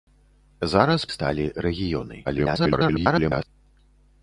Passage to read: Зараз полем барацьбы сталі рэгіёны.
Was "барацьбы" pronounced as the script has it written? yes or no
no